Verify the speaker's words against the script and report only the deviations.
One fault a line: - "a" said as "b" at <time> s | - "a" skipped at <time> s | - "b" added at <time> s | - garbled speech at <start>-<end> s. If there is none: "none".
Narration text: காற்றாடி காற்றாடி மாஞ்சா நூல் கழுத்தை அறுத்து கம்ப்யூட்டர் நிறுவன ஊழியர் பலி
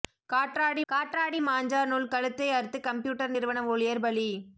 none